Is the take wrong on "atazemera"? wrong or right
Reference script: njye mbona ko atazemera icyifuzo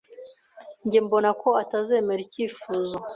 right